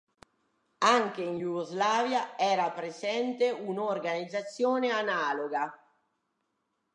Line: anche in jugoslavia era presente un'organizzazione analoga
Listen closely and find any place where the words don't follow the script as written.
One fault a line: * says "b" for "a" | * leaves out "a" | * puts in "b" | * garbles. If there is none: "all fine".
all fine